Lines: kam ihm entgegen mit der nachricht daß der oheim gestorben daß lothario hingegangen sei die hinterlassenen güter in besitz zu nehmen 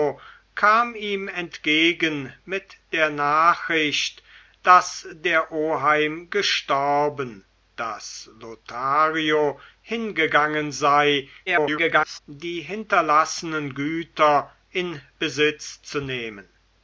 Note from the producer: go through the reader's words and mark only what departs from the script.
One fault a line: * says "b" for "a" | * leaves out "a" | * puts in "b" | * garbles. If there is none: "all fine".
* garbles